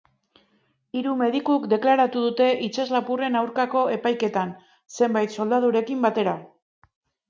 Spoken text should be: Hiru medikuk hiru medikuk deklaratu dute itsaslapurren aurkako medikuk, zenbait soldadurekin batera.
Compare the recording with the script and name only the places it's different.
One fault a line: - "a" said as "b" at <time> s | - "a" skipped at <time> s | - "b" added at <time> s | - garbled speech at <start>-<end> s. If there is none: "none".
- "hiru medikuk" skipped at 1.7 s
- "medikuk" said as "epaiketan" at 4.0 s